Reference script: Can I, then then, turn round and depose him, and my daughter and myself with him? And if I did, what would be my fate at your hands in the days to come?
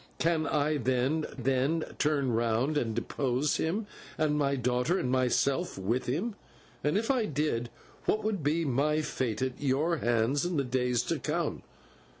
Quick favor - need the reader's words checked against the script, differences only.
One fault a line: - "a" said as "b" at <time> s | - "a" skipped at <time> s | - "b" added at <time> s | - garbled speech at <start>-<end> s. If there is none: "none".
none